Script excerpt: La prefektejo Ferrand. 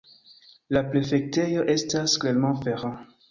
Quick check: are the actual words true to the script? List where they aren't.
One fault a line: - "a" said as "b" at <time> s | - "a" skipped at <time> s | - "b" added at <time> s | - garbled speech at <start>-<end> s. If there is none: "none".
- "estas Clermont" added at 1.8 s